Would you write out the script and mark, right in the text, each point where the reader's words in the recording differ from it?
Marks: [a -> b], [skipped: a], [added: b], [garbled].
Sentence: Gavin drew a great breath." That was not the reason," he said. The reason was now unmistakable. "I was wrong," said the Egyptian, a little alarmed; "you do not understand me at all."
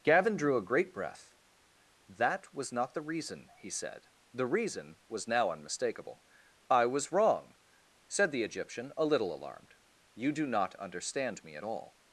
Gavin drew a great breath." That was not the reason," he said. The reason was now unmistakable. "I was wrong," said the Egyptian, a little alarmed; "you do not understand me at all."